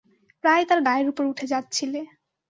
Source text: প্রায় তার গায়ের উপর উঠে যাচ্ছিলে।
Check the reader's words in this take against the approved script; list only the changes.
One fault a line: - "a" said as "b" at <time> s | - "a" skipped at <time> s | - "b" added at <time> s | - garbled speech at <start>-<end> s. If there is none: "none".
none